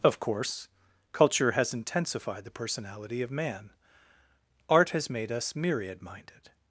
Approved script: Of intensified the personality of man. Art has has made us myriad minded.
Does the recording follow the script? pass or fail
fail